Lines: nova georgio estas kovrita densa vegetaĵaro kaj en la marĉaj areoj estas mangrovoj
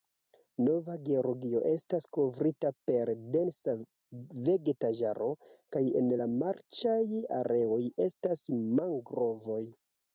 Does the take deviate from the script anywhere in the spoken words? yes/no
yes